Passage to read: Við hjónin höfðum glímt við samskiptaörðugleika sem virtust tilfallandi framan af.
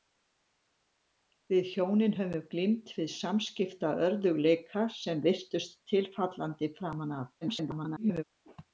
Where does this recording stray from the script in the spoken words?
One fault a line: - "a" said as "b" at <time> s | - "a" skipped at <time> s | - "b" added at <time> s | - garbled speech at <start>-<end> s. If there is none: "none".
- garbled speech at 7.4-8.2 s